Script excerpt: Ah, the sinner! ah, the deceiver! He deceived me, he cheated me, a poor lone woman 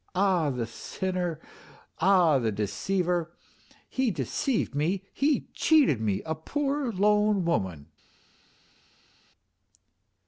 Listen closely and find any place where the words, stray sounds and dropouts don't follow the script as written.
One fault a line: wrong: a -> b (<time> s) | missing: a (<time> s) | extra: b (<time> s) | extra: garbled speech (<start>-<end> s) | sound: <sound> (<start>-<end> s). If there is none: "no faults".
no faults